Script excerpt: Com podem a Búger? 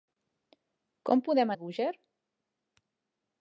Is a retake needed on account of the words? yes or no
no